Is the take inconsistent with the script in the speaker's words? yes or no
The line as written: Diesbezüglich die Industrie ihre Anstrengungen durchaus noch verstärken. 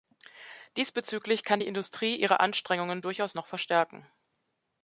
yes